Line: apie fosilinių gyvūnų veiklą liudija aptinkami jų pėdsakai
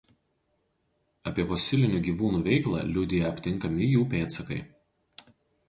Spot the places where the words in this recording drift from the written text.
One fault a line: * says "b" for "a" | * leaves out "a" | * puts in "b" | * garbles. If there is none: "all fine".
all fine